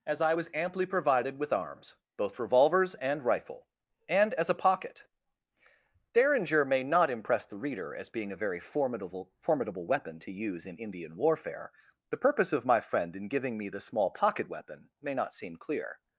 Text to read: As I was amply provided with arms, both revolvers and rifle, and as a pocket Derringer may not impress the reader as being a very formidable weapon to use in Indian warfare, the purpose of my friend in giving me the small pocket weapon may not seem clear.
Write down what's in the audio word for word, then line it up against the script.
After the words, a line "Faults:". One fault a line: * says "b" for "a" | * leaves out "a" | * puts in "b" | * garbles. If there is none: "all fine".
As I was amply provided with arms, both revolvers and rifle, and as a pocket Derringer may not impress the reader as being a very formidable formidable weapon to use in Indian warfare, the purpose of my friend in giving me the small pocket weapon may not seem clear.
Faults:
* puts in "formidable"